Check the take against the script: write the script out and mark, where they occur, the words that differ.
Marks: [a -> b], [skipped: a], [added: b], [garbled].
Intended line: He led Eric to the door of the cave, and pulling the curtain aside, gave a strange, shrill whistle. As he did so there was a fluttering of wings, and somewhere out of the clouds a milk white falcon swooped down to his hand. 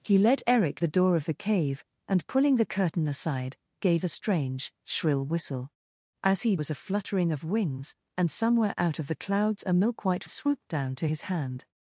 He led Eric [skipped: to] the door of the cave, and pulling the curtain aside, gave a strange, shrill whistle. As he [skipped: did so there] was a fluttering of wings, and somewhere out of the clouds a milk white [skipped: falcon] swooped down to his hand.